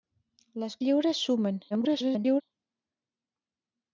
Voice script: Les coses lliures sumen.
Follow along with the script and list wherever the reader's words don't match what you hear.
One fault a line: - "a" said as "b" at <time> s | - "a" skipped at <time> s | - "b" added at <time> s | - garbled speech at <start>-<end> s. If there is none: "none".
- "coses" skipped at 0.8 s
- garbled speech at 1.7-2.4 s